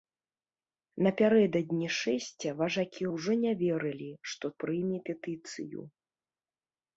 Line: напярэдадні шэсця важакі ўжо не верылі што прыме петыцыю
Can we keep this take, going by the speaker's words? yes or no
yes